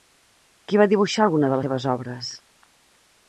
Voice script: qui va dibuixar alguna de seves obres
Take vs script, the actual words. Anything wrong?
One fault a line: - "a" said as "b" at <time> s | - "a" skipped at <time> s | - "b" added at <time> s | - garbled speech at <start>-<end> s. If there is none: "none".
none